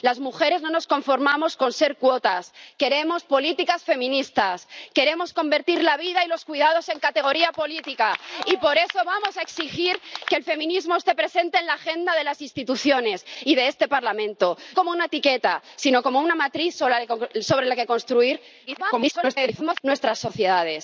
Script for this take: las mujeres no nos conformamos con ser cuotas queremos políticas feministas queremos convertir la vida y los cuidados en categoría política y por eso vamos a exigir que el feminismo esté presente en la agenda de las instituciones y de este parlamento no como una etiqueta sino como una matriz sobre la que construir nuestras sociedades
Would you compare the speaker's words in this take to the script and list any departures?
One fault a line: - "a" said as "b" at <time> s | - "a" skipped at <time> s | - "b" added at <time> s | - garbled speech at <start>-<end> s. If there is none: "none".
- "no" skipped at 14.6 s
- garbled speech at 18.7-19.8 s